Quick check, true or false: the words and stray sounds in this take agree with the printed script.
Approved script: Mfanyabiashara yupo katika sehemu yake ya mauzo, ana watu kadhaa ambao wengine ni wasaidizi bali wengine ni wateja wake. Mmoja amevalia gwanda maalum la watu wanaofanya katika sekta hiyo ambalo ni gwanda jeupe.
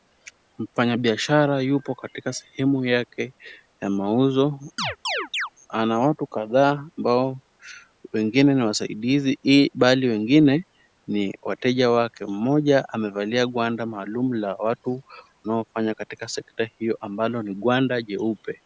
false